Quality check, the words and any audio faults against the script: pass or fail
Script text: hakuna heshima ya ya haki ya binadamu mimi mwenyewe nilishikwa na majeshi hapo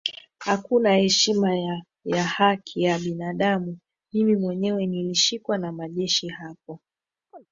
fail